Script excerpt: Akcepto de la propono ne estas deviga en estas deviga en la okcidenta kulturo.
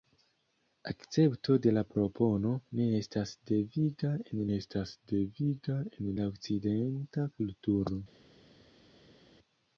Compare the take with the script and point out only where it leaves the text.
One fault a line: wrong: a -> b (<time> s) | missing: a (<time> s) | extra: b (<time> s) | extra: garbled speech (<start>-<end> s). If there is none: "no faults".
no faults